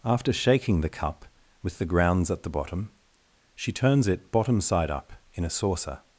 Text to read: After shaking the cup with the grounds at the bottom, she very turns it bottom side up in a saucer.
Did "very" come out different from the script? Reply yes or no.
yes